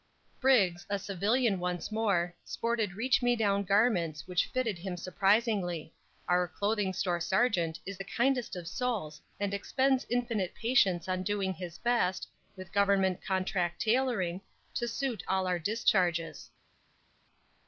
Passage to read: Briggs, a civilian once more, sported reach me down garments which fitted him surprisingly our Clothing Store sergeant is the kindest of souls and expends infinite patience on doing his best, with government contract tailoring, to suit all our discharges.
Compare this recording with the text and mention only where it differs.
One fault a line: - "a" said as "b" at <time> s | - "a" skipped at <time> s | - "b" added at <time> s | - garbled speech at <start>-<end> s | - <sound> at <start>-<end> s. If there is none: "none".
none